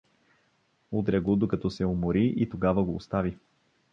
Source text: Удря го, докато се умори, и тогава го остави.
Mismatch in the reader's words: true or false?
false